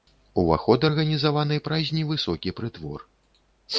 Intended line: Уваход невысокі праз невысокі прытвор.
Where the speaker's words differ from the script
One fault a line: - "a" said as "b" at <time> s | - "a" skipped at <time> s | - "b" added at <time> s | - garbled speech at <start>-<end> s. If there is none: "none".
- "невысокі" said as "арганізаваны" at 0.9 s